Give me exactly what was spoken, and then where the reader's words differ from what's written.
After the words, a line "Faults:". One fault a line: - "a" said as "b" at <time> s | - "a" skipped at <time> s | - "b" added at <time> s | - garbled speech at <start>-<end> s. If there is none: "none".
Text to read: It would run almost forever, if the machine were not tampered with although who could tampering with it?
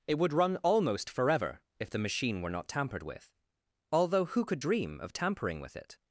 It would run almost forever, if the machine were not tampered with although who could dream of tampering with it?
Faults:
- "dream of" added at 4.6 s